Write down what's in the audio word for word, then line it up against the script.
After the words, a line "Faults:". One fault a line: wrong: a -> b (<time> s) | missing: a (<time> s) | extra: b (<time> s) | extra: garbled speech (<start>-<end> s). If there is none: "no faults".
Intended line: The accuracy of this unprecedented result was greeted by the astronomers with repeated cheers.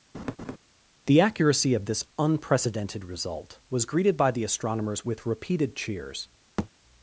The accuracy of this unprecedented result was greeted by the astronomers with repeated cheers.
Faults:
no faults